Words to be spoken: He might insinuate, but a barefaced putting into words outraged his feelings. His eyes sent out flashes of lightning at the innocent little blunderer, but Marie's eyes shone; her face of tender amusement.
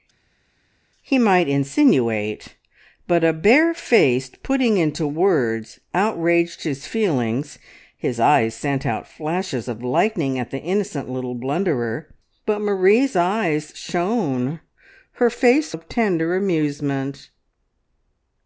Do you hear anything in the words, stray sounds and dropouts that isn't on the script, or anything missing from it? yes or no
no